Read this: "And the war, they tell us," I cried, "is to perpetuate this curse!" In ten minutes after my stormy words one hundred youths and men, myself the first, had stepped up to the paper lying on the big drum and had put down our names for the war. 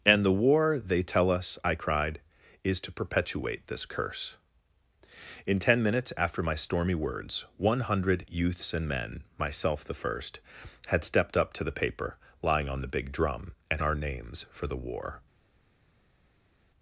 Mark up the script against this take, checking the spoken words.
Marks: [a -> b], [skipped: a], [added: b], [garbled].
"And the war, they tell us," I cried, "is to perpetuate this curse!" In ten minutes after my stormy words one hundred youths and men, myself the first, had stepped up to the paper lying on the big drum and [skipped: had put down] our names for the war.